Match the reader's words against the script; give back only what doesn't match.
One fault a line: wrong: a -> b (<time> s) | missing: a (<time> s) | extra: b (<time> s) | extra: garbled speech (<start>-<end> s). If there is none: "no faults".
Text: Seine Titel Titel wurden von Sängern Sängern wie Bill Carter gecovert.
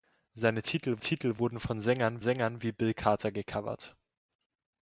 no faults